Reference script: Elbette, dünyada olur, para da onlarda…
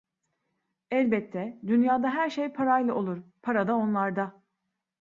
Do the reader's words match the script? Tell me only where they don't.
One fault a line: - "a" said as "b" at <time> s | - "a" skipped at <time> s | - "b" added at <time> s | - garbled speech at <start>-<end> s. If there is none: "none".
- "her şey parayla" added at 2.1 s